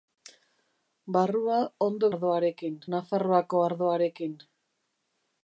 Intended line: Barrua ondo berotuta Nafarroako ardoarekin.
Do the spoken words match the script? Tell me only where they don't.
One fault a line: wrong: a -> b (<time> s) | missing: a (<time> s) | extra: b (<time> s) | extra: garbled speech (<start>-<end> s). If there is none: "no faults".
wrong: berotuta -> ardoarekin (2.1 s)